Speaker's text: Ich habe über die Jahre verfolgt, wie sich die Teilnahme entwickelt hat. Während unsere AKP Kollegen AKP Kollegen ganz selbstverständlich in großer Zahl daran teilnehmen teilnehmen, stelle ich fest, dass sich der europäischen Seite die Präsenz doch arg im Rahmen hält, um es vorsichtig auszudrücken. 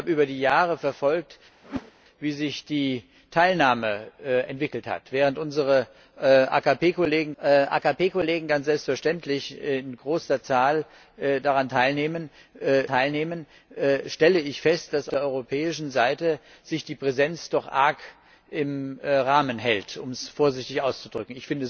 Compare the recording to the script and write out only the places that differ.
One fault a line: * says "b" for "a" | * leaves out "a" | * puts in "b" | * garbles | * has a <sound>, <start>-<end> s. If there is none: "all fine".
* has a whoosh, 1.6-1.9 s